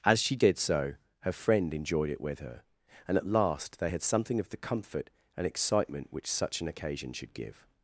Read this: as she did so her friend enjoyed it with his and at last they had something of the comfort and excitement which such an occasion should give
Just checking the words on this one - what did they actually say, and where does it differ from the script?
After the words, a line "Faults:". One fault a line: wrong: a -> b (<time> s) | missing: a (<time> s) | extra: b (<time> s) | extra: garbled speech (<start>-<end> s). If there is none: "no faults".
as she did so her friend enjoyed it with her and at last they had something of the comfort and excitement which such an occasion should give
Faults:
wrong: his -> her (2.4 s)